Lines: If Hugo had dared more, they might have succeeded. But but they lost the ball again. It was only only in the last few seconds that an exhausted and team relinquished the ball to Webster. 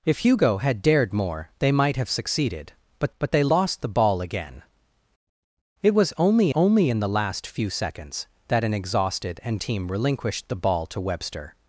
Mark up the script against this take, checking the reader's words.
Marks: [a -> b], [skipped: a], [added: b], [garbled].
If Hugo had dared more, they might have succeeded. But but they lost the ball again. It was only only in the last few seconds that an exhausted and team relinquished the ball to Webster.